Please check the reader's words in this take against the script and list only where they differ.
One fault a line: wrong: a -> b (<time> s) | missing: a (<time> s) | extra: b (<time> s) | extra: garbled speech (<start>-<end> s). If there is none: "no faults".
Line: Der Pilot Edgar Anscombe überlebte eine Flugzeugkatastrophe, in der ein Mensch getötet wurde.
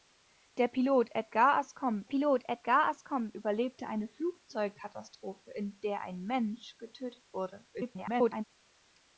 extra: Pilot Edgar Anscombe (2.0 s)
extra: garbled speech (7.7-8.4 s)